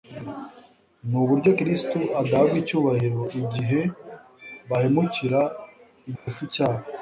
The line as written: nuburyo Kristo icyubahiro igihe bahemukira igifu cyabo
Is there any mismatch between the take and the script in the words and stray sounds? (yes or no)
yes